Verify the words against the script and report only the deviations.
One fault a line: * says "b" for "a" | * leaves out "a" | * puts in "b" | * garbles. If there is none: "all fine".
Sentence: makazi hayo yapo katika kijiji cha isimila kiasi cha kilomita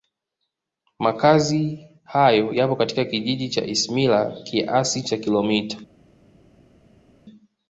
all fine